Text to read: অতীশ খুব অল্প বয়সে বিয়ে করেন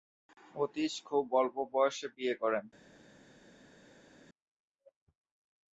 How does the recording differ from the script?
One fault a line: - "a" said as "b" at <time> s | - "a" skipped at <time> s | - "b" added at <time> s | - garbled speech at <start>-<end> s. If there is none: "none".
none